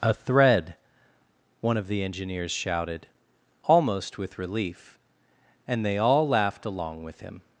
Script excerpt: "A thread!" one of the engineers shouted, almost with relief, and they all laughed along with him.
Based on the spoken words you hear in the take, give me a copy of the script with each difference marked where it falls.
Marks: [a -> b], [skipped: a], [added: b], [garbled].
"A thread!" one of the engineers shouted, almost with relief, and they all laughed along with him.